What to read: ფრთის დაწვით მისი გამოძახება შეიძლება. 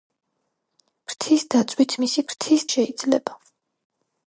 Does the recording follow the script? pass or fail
fail